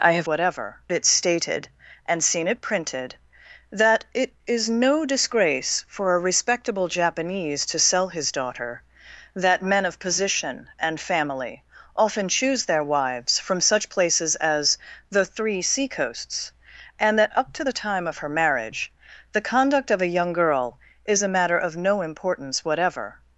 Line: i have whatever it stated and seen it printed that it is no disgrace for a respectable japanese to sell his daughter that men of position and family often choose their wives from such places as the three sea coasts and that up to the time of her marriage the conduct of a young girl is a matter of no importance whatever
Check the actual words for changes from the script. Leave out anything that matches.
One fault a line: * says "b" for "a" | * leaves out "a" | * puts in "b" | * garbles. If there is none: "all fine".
all fine